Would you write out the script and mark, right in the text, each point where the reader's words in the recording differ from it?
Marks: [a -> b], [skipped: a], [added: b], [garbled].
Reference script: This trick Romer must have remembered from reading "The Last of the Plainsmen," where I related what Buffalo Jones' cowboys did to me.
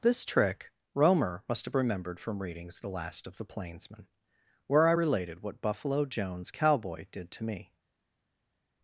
This trick Romer must have remembered from [reading -> readings] "The Last of the Plainsmen," where I related what Buffalo Jones' [cowboys -> cowboy] did to me.